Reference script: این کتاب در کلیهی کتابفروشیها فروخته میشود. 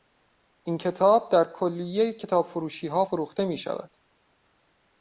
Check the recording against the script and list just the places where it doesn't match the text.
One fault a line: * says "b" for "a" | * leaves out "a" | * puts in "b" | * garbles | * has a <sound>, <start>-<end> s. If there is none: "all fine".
all fine